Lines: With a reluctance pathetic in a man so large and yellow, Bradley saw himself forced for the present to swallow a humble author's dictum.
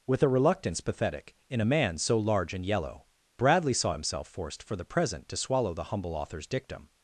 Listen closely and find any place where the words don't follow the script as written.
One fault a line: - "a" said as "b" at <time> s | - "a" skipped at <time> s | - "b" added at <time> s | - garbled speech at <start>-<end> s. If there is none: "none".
- "a" said as "the" at 5.7 s